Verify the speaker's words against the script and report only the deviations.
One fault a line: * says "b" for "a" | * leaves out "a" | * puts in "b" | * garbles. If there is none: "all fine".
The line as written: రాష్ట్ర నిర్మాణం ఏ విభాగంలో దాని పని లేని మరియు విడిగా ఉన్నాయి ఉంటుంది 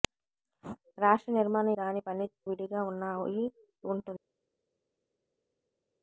* leaves out "ఏ విభాగంలో"
* leaves out "లేని మరియు"